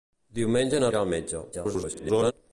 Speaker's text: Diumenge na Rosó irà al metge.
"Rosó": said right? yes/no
no